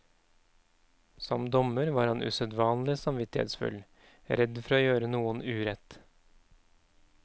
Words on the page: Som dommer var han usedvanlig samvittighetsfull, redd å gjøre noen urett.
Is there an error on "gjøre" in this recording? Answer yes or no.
no